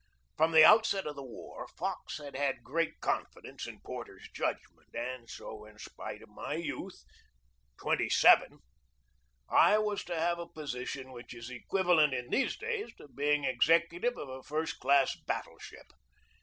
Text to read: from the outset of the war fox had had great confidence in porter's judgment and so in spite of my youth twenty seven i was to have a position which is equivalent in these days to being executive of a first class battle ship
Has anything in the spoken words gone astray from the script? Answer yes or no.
no